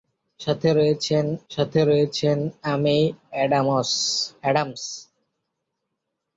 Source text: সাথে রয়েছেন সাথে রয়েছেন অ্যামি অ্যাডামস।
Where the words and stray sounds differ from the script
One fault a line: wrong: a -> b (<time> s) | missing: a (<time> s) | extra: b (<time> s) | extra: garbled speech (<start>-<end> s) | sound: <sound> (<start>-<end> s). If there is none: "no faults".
no faults